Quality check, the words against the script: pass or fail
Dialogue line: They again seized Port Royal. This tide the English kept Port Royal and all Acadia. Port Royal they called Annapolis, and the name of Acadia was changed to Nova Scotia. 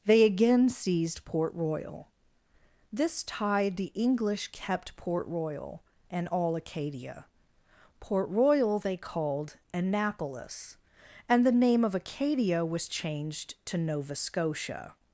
pass